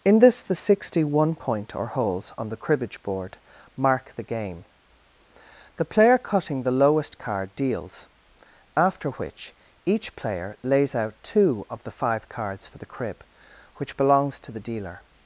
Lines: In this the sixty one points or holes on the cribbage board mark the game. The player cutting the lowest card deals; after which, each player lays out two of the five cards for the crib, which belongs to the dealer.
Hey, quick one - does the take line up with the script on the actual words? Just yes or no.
no